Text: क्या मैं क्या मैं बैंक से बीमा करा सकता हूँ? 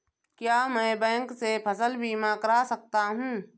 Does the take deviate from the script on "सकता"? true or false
false